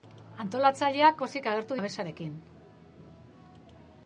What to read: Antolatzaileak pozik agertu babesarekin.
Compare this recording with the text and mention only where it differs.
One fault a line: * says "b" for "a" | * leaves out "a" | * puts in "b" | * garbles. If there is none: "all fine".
all fine